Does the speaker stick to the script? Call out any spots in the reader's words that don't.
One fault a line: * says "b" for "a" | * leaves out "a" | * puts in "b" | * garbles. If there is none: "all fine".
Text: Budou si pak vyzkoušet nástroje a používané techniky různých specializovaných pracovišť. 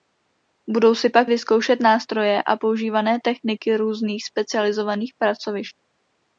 all fine